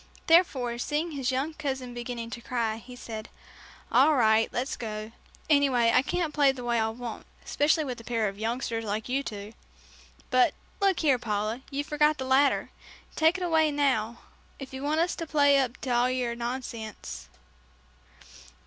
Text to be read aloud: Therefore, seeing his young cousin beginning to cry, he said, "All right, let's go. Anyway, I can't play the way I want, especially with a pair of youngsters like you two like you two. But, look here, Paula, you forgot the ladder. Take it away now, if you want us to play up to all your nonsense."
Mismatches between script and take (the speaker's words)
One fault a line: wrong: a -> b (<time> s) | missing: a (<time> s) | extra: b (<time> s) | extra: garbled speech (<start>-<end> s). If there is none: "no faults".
missing: like you two (9.5 s)